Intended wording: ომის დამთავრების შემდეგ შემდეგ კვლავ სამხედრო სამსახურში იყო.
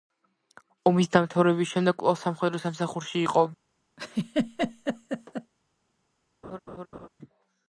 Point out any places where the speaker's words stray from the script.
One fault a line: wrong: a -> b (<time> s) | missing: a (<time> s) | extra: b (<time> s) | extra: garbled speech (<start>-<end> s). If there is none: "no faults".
missing: შემდეგ (2.0 s)